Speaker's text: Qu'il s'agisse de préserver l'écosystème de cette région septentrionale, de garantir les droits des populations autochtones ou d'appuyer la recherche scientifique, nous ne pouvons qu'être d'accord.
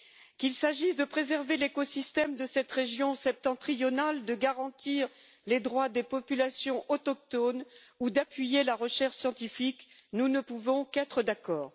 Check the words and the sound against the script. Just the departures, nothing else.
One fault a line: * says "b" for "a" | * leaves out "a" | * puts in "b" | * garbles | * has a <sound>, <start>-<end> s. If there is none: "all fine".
all fine